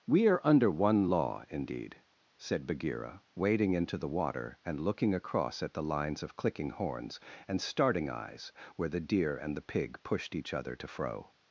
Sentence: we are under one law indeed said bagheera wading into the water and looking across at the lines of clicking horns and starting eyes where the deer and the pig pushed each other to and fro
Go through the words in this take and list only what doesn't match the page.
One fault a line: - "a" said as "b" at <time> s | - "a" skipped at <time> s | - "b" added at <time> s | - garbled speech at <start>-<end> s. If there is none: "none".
- "and" skipped at 10.9 s